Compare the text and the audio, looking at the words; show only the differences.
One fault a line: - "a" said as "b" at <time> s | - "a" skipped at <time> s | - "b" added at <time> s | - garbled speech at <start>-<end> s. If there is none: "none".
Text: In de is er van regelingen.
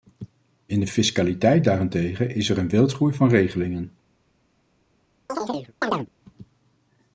- "fiscaliteit daarentegen" added at 0.9 s
- "een wildgroei" added at 2.6 s